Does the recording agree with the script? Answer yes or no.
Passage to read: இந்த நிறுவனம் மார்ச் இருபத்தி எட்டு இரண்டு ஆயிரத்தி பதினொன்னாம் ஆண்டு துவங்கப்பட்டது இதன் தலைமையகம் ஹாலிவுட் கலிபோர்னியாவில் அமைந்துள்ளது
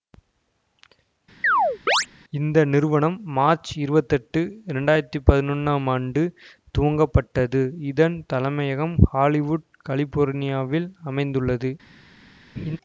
yes